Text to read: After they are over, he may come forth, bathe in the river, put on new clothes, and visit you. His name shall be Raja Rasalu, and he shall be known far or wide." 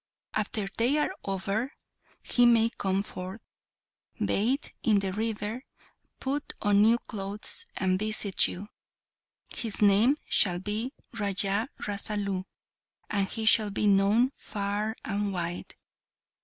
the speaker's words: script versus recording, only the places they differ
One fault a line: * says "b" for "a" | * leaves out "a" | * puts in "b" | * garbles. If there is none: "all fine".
* says "and" for "or"